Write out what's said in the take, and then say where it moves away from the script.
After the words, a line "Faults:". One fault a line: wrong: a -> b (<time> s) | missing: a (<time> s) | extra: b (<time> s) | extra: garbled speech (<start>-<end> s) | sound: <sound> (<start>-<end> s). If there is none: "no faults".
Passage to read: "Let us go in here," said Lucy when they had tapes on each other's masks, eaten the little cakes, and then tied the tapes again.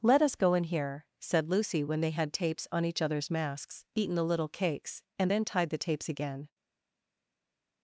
"Let us go in here," said Lucy when they had tapes on each other's masks, eaten the little cakes, and then tied the tapes again.
Faults:
no faults